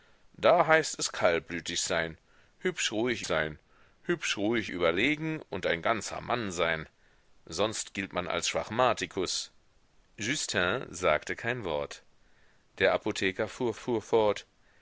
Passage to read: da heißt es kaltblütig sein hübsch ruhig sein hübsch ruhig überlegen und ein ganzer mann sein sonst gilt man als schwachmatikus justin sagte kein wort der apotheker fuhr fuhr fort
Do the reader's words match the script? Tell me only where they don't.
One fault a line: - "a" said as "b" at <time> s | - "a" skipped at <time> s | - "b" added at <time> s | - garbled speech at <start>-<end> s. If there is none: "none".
none